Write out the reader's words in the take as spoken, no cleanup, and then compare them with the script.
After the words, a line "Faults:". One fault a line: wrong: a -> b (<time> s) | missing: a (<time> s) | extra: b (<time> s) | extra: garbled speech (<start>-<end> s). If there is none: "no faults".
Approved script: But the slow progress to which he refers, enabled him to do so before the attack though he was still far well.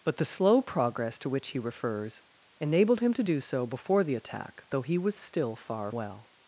But the slow progress to which he refers, enabled him to do so before the attack though he was still far well.
Faults:
no faults